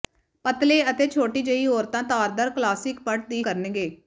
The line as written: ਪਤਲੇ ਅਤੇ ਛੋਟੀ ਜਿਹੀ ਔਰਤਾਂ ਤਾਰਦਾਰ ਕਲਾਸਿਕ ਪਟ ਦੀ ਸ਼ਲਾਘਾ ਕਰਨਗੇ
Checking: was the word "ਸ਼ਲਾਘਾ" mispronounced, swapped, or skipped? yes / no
yes